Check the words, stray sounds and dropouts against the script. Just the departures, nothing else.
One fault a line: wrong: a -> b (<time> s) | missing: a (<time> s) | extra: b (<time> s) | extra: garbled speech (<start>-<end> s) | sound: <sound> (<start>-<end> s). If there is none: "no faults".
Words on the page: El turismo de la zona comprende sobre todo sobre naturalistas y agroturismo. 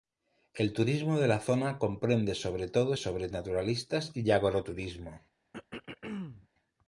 sound: throat clearing (5.5-6.5 s)